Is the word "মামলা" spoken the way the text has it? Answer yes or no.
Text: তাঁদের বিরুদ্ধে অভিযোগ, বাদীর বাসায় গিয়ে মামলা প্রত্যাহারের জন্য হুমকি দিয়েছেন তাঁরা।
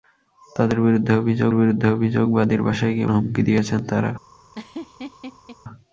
no